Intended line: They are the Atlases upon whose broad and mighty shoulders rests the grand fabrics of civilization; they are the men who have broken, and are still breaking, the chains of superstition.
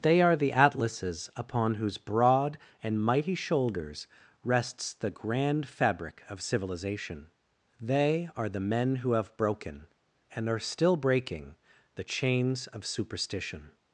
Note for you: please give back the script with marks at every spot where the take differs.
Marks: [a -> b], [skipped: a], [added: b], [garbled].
They are the Atlases upon whose broad and mighty shoulders rests the grand [fabrics -> fabric] of civilization; they are the men who have broken, and are still breaking, the chains of superstition.